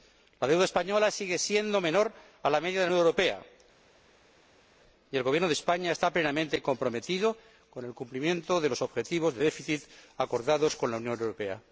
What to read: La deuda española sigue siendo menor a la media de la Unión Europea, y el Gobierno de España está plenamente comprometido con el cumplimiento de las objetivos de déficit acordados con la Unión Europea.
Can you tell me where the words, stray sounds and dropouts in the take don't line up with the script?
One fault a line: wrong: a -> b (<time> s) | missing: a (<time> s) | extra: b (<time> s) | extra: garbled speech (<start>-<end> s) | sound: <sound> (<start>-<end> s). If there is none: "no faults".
wrong: las -> los (8.7 s)